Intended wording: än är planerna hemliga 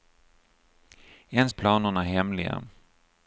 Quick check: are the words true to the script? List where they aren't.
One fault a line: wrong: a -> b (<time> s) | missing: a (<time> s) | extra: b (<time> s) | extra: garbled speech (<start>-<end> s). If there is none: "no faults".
no faults